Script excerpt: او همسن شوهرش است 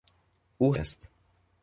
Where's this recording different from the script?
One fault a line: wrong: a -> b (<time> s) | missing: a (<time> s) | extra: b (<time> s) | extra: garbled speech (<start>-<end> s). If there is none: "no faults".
missing: همسن شوهرش (0.8 s)